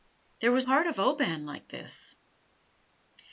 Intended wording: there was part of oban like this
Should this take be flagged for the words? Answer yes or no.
no